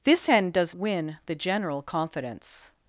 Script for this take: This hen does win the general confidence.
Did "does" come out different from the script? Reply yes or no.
no